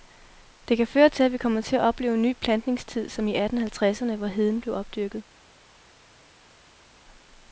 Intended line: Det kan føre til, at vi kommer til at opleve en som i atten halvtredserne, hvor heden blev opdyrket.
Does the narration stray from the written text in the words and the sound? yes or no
yes